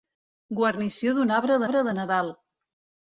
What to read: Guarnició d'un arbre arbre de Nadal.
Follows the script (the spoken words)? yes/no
yes